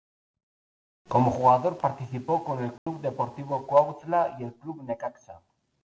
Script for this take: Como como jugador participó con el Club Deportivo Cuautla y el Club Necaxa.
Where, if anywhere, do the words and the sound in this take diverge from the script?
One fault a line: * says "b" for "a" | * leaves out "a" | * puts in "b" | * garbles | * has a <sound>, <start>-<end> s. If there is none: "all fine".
* leaves out "como"
* has a dropout, 2.8-2.9 s